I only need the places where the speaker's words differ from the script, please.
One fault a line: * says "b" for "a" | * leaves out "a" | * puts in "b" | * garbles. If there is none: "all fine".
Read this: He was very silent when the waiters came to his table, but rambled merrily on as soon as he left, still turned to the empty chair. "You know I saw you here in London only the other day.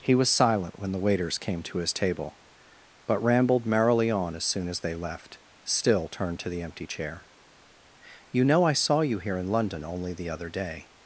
* leaves out "very"
* says "they" for "he"